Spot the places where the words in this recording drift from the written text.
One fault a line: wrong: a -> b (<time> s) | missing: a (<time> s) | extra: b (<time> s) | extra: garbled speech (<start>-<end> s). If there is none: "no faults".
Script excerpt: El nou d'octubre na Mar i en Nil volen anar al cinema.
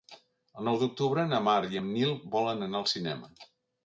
no faults